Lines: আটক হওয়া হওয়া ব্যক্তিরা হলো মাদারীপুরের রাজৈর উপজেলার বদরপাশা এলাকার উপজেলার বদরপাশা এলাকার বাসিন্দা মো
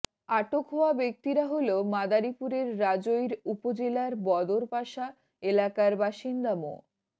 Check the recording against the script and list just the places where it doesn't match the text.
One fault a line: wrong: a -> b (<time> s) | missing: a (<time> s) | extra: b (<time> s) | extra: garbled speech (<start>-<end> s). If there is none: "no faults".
missing: হওয়া (0.9 s)
missing: উপজেলার বদরপাশা এলাকার (5.9 s)